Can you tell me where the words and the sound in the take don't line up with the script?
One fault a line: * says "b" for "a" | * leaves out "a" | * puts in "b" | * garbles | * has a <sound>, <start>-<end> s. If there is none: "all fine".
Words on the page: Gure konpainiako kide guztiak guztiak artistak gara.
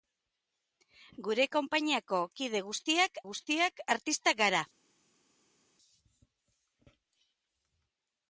all fine